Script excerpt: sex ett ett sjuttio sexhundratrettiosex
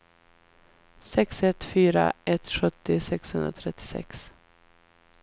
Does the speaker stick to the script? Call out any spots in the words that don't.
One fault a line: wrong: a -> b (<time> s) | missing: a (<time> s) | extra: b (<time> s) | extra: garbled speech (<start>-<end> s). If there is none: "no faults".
extra: fyra (1.6 s)